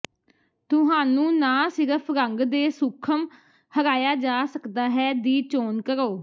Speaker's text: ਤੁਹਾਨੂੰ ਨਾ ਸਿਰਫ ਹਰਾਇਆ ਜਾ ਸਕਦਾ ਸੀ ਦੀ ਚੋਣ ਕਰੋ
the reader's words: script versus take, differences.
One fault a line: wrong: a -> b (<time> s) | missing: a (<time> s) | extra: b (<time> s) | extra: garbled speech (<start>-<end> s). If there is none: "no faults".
extra: ਰੰਗ ਦੇ ਸੂਖਮ (2.1 s)
wrong: ਸੀ -> ਹੈ (4.9 s)